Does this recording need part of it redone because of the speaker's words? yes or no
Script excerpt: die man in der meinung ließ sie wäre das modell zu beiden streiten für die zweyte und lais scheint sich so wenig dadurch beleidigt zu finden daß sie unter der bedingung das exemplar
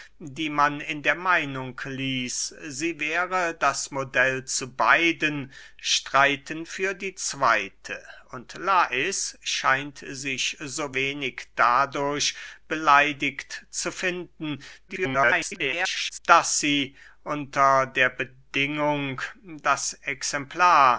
yes